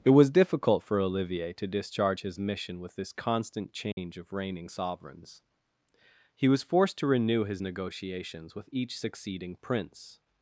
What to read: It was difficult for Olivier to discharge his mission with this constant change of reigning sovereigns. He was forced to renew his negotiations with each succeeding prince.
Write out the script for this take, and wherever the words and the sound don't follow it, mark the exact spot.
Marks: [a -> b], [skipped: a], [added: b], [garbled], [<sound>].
It was difficult for Olivier to discharge his mission with this constant change [dropout] of reigning sovereigns. He was forced to renew his negotiations with each succeeding prince.